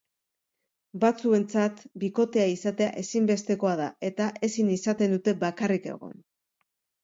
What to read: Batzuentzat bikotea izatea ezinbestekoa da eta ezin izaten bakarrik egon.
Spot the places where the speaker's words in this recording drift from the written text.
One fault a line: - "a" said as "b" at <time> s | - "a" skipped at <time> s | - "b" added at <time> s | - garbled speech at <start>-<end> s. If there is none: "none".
- "dute" added at 5.2 s